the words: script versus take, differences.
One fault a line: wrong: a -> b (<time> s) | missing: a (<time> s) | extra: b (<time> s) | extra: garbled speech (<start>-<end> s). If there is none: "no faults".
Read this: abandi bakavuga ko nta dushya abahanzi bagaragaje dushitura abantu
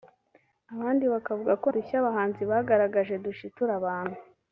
missing: nta (1.7 s)